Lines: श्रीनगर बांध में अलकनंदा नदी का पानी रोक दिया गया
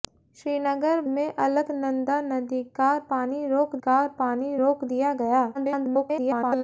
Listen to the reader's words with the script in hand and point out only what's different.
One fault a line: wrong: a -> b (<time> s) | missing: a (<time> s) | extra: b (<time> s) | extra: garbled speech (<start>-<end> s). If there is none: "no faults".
missing: बांध (1.0 s)
extra: का पानी रोक (3.8 s)
extra: garbled speech (5.5-6.6 s)